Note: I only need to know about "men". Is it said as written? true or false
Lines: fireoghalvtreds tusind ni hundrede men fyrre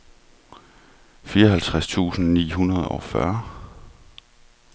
false